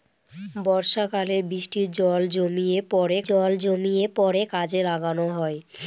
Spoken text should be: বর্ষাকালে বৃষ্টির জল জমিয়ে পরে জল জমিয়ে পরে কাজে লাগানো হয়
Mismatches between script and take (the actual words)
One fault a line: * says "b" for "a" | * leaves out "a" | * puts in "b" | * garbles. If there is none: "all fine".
all fine